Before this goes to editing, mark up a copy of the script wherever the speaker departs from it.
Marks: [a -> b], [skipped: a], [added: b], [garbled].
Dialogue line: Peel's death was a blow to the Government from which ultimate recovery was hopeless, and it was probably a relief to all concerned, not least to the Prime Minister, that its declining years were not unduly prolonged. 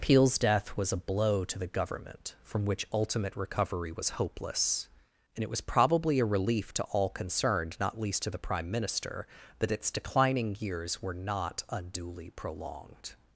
Peel's death was a blow to the Government from which ultimate recovery was hopeless, and it was probably a relief to all concerned, not least to the Prime Minister, that its declining years were not unduly prolonged.